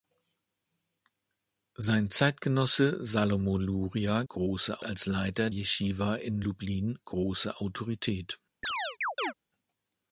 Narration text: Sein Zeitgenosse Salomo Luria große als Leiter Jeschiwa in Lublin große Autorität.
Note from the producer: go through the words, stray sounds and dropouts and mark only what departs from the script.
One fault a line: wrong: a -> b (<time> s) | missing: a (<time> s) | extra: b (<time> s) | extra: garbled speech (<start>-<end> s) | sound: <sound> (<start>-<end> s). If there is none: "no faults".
sound: chirp (8.6-9.3 s)